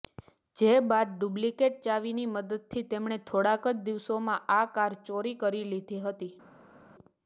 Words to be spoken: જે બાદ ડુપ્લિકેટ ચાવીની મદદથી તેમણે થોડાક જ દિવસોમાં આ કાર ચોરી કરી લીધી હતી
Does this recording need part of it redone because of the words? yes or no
no